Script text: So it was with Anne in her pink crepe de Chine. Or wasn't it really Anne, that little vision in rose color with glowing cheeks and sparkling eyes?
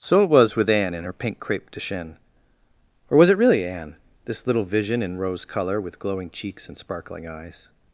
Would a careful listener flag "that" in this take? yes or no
yes